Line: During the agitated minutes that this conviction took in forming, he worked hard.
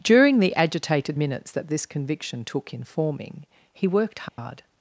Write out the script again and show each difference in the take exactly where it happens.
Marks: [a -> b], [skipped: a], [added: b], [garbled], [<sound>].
During the agitated minutes that this conviction took in forming, he worked hard. [dropout]